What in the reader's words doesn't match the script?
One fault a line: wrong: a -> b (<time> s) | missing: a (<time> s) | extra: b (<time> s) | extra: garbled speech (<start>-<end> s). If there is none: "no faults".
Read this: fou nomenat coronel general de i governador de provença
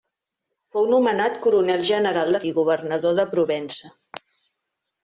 no faults